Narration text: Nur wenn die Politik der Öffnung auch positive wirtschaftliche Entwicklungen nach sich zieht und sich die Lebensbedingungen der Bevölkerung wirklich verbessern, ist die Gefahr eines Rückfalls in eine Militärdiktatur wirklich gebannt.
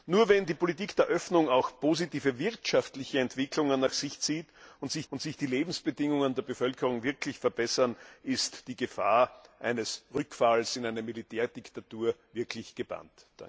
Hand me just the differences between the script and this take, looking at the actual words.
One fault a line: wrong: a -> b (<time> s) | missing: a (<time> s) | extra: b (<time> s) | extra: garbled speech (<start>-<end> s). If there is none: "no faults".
extra: und sich (5.1 s)